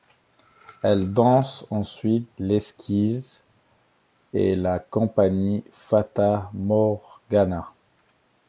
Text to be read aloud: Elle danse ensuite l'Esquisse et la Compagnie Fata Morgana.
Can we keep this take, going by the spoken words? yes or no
yes